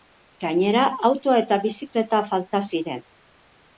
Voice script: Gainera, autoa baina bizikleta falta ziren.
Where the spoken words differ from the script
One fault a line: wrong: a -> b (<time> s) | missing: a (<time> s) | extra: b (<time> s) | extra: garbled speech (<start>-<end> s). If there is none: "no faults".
wrong: baina -> eta (1.4 s)